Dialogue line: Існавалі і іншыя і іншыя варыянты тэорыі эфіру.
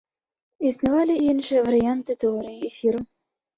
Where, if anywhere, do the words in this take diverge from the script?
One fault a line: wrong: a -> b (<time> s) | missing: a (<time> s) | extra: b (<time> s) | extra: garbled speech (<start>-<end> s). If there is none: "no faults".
missing: і іншыя (1.7 s)